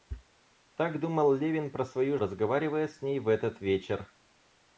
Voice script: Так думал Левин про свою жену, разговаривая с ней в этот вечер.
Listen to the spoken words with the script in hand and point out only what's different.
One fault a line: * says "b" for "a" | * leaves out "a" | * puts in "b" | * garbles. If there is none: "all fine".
* leaves out "жену"